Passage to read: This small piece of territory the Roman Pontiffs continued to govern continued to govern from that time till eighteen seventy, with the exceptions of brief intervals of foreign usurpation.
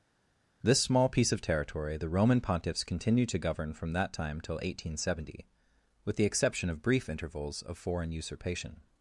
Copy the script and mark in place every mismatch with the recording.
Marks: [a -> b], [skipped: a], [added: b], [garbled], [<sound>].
This small piece of territory the Roman Pontiffs continued to govern [skipped: continued to govern] from that time till eighteen seventy, with the [exceptions -> exception] of brief intervals of foreign usurpation.